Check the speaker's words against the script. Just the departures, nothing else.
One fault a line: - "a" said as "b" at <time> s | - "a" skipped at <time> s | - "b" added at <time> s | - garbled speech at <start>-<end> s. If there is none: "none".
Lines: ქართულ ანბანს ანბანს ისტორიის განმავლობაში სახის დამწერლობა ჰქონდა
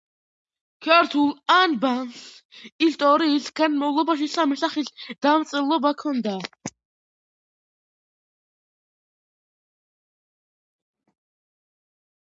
- "ანბანს" skipped at 2.2 s
- "სამი" added at 4.4 s